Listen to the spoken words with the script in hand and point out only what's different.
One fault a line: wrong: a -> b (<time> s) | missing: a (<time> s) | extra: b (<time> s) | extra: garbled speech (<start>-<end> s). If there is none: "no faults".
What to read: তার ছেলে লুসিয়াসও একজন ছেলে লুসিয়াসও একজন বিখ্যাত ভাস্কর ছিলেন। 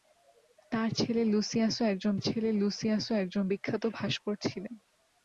no faults